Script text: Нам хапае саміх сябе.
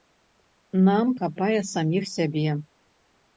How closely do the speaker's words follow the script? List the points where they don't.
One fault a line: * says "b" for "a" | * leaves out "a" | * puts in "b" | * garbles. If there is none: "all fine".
all fine